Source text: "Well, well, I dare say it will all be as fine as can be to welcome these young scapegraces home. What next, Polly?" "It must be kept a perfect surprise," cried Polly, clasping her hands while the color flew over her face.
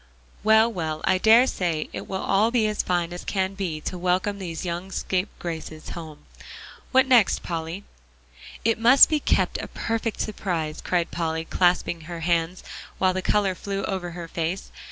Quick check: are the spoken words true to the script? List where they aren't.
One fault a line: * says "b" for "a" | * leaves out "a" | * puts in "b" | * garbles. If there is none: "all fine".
all fine